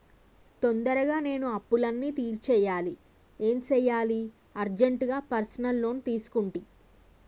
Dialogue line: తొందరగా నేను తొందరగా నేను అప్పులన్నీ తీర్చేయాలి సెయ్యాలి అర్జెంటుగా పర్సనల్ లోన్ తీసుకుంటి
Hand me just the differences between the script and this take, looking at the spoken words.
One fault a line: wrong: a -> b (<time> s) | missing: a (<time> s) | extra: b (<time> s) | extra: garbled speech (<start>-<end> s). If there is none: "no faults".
missing: తొందరగా నేను (1.5 s)
extra: ఏం (3.4 s)